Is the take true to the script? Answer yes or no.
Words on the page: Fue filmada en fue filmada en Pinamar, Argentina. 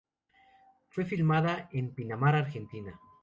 no